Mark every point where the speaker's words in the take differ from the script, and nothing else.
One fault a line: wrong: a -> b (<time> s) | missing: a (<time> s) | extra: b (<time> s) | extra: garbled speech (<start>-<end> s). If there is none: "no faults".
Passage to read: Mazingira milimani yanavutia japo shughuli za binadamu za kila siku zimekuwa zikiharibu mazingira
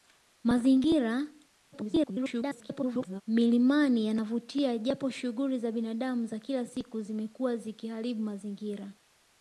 extra: garbled speech (1.7-3.2 s)